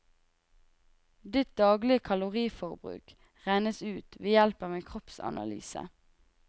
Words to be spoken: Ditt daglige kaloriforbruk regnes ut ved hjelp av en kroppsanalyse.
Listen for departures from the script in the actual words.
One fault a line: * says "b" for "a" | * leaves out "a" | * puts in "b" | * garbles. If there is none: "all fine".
all fine